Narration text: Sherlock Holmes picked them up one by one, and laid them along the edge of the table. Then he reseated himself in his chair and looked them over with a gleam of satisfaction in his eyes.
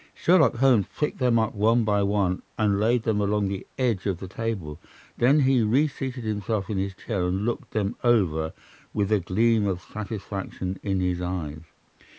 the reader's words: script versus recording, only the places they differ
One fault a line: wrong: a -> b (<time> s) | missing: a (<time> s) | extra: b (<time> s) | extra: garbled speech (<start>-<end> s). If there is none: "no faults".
no faults